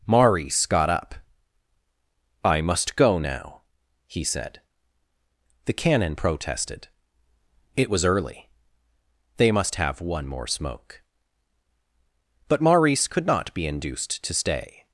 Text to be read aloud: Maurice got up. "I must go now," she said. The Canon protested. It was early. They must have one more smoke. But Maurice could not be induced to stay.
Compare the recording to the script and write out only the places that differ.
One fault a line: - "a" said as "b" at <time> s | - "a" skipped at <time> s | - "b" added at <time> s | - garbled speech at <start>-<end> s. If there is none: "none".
- "she" said as "he" at 4.1 s